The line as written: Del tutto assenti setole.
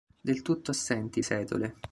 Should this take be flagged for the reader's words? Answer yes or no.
no